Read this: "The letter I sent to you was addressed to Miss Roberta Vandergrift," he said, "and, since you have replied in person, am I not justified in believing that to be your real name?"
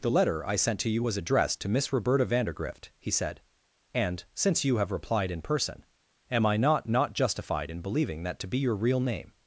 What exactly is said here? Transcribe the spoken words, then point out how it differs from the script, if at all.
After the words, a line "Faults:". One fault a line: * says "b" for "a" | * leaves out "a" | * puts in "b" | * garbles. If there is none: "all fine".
"The letter I sent to you was addressed to Miss Roberta Vandergrift," he said, "and, since you have replied in person, am I not not justified in believing that to be your real name?"
Faults:
* puts in "not"